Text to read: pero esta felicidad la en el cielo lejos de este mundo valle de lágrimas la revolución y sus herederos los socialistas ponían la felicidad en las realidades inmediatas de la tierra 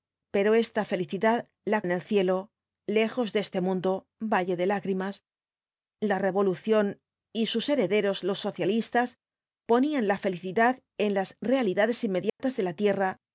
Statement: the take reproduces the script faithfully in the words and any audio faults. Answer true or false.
false